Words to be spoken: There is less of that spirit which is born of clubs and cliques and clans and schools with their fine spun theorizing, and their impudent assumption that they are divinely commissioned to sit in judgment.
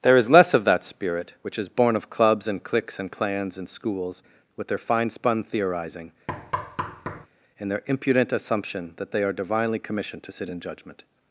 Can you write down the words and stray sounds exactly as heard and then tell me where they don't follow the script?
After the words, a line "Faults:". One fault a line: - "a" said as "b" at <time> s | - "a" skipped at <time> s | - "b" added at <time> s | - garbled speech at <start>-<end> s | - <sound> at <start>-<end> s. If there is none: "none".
There is less of that spirit which is born of clubs and cliques and clans and schools with their fine spun theorizing, and their impudent assumption that they are divinely commissioned to sit in judgment.
Faults:
- thud at 6.3-7.3 s